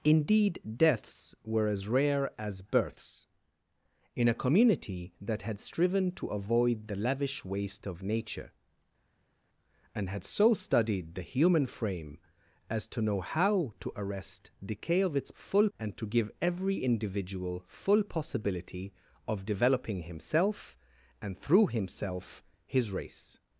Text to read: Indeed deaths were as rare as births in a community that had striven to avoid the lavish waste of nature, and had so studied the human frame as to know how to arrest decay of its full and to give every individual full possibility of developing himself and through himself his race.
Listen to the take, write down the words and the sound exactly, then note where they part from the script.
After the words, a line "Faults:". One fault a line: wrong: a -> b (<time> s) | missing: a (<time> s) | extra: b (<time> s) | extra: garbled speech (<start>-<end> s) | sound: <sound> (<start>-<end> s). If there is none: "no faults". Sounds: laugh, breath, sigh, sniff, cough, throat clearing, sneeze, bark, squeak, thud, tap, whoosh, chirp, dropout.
Indeed deaths were as rare as births in a community that had striven to avoid the lavish waste of nature, and had so studied the human frame as to know how to arrest decay of its full and to give every individual full possibility of developing himself and through himself his race.
Faults:
no faults